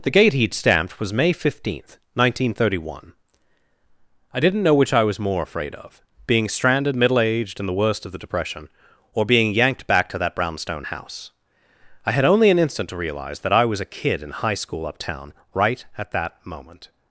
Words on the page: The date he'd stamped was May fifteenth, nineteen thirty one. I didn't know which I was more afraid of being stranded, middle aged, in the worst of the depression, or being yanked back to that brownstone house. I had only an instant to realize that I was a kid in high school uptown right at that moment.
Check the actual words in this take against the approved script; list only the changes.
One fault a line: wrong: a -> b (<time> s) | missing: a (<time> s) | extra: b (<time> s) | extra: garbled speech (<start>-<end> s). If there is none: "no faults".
wrong: date -> gate (0.1 s)